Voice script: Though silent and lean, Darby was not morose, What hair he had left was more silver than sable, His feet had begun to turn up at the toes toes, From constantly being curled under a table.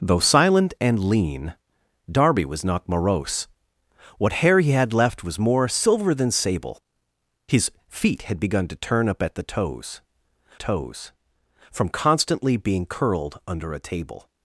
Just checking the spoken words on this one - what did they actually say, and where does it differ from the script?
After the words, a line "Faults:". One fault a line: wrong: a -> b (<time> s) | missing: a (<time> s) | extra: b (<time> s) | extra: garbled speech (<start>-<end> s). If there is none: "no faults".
Though silent and lean, Darby was not morose, What hair he had left was more silver than sable, His feet had begun to turn up at the toes toes, From constantly being curled under a table.
Faults:
no faults